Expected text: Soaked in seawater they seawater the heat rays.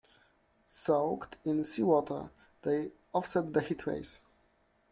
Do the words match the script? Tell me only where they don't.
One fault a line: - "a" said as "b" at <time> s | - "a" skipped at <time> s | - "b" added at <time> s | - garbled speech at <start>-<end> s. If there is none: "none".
- "seawater" said as "offset" at 3.1 s